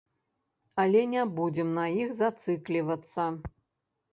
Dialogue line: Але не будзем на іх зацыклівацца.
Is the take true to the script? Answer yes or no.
yes